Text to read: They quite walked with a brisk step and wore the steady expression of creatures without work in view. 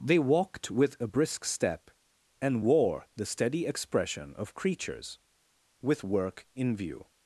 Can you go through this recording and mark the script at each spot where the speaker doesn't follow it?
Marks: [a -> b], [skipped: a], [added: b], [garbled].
They [skipped: quite] walked with a brisk step and wore the steady expression of creatures [without -> with] work in view.